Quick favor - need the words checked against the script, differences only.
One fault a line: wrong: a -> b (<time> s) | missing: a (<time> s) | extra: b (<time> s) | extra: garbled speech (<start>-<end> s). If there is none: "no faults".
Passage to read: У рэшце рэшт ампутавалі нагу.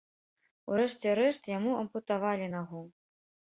extra: яму (1.6 s)